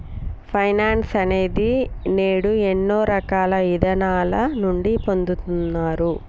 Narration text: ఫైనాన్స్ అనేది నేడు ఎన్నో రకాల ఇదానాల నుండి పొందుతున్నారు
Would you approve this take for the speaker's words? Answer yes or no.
yes